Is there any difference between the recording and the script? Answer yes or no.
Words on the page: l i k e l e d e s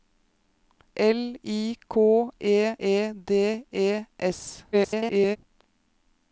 yes